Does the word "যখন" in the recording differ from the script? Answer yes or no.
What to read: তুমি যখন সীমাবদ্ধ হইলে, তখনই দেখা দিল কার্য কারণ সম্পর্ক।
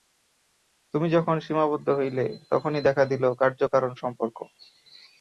no